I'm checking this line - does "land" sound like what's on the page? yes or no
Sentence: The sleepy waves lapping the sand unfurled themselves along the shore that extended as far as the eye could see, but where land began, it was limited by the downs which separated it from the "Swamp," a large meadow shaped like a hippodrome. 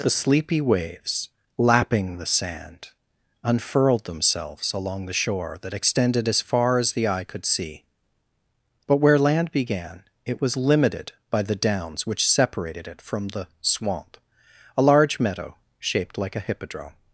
yes